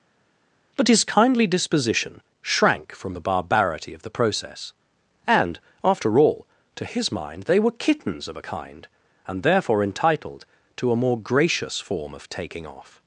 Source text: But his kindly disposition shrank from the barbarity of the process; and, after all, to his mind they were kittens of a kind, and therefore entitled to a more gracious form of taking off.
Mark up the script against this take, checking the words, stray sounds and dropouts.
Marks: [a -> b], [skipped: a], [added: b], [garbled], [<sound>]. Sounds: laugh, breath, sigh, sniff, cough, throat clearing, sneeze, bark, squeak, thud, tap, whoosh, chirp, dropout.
But his kindly disposition shrank from the barbarity of the process; and, after all, to his mind they were kittens of a kind, and therefore entitled to a more gracious form of taking off.